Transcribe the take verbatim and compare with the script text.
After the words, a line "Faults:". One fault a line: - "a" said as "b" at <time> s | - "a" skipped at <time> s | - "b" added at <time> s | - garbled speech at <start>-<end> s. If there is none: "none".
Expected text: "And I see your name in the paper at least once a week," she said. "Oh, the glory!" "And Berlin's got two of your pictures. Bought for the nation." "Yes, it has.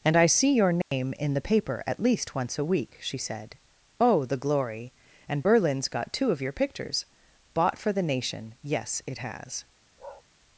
"And I see your name in the paper at least once a week," she said. "Oh, the glory!" "And Berlin's got two of your pictures. Bought for the nation." "Yes, it has.
Faults:
none